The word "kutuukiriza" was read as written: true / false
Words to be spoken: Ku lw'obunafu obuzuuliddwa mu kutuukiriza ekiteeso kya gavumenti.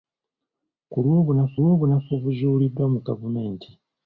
false